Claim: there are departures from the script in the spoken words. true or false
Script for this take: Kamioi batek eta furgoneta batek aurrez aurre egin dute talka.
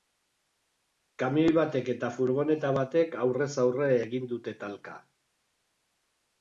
false